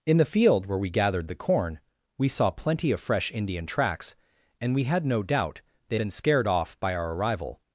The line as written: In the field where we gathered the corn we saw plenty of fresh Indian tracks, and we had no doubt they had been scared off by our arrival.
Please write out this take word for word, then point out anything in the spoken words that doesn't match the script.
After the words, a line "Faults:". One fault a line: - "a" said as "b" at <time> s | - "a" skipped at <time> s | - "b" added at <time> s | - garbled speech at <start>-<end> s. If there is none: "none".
In the field where we gathered the corn we saw plenty of fresh Indian tracks, and we had no doubt they been scared off by our arrival.
Faults:
- "had" skipped at 6.0 s